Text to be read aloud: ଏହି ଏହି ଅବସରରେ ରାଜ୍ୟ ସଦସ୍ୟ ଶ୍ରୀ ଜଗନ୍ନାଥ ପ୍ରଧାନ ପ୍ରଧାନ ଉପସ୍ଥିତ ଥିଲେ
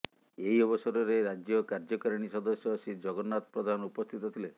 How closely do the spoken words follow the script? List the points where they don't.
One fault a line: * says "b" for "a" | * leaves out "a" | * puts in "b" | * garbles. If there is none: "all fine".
* leaves out "ଏହି"
* puts in "କାର୍ଯ୍ୟକାରିଣୀ"
* leaves out "ପ୍ରଧାନ"